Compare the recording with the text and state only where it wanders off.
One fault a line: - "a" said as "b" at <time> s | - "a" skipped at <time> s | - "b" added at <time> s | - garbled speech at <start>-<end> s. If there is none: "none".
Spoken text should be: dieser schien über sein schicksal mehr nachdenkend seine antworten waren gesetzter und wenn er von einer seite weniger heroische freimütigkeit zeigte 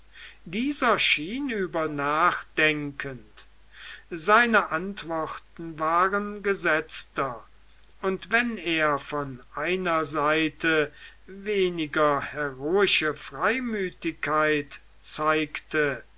- "sein schicksal mehr" skipped at 1.9 s